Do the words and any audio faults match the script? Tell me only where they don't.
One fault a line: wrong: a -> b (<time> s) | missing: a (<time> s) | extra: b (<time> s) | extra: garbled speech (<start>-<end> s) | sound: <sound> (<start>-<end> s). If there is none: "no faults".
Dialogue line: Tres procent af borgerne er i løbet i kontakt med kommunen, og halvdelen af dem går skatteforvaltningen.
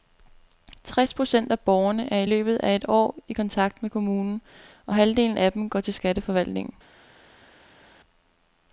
extra: af et år (2.6 s)
extra: til (5.8 s)